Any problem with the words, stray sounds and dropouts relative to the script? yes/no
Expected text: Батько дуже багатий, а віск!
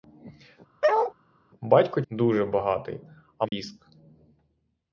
yes